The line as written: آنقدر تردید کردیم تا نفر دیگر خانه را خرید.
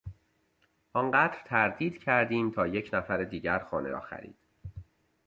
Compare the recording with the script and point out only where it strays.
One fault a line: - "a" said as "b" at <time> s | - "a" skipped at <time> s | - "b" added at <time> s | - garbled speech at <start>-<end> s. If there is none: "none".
- "یک" added at 2.7 s